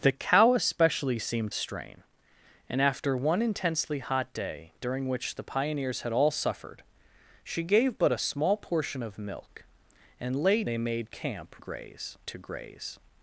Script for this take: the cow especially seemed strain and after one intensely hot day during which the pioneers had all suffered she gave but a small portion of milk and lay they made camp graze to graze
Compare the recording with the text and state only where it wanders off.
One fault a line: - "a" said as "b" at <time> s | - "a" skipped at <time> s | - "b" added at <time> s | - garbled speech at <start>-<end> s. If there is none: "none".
none